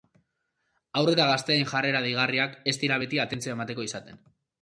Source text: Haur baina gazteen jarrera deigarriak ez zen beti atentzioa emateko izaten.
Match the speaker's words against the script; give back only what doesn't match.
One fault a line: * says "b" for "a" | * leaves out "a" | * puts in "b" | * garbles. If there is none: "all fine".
* says "eta" for "baina"
* says "dira" for "zen"